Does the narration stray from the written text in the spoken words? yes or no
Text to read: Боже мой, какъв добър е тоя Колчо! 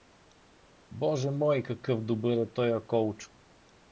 no